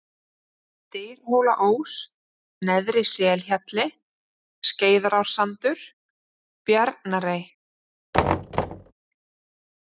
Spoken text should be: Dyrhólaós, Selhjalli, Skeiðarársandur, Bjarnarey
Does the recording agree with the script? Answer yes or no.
no